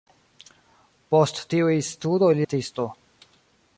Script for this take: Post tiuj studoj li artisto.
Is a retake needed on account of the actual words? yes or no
no